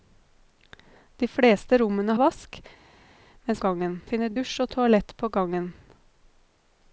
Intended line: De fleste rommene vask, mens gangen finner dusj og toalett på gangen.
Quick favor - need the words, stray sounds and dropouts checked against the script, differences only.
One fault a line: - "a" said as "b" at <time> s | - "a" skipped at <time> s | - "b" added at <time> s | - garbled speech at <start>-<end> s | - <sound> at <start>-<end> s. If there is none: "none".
none